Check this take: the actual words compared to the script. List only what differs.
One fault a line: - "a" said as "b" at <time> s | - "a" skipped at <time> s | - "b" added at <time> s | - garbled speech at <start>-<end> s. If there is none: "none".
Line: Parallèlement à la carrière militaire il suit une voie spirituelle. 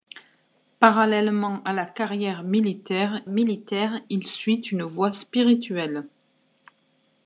- "militaire" added at 3.3 s